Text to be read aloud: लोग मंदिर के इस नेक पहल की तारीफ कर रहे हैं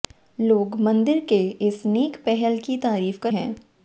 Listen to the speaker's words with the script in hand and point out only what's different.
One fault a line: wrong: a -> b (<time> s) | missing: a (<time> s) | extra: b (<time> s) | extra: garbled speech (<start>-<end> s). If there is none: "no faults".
missing: रहे (3.3 s)